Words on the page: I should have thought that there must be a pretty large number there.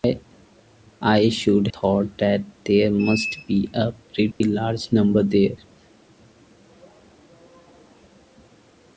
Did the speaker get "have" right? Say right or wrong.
wrong